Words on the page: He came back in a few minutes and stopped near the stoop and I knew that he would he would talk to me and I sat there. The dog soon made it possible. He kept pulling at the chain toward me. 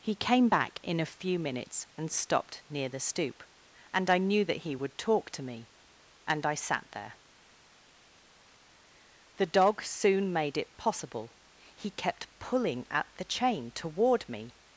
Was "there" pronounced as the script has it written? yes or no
yes